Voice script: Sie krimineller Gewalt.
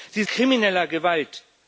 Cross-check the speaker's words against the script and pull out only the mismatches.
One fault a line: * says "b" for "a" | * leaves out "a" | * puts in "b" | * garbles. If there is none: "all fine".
all fine